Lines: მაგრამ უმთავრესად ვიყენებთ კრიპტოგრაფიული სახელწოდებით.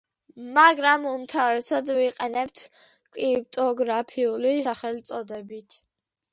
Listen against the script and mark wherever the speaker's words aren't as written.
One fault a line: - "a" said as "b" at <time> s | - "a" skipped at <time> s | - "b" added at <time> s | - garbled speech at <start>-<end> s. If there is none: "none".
none